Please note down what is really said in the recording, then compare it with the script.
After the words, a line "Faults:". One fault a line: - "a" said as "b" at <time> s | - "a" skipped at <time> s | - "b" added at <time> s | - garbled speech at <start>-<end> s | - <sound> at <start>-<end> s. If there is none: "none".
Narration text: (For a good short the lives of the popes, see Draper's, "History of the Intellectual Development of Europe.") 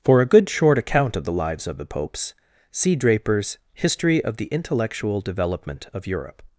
(For a good short account of the lives of the popes, see Draper's, "History of the Intellectual Development of Europe.")
Faults:
- "account of" added at 0.8 s